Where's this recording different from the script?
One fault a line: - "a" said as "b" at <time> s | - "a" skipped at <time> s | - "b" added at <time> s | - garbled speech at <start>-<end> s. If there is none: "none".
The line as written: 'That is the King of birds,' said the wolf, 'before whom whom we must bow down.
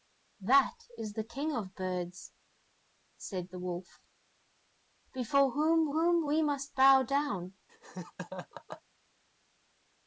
none